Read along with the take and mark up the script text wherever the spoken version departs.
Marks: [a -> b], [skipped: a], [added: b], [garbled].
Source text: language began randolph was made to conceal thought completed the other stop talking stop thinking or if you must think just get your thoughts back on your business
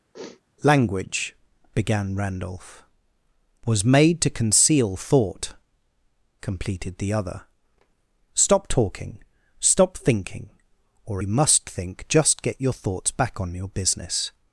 language began randolph was made to conceal thought completed the other stop talking stop thinking or [skipped: if] you must think just get your thoughts back on your business